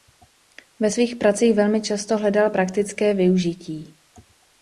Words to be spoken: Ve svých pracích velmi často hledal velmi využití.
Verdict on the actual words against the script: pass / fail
fail